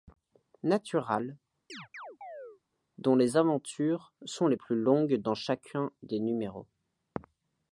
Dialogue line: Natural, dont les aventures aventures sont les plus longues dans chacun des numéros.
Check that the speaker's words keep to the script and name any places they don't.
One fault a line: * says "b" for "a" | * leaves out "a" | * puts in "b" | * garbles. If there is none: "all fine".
* leaves out "aventures"